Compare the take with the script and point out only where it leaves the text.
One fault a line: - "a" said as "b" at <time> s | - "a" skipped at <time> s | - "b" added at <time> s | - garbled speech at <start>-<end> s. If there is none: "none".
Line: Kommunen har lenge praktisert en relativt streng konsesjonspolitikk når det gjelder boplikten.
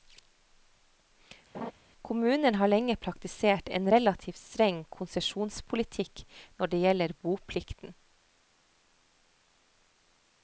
none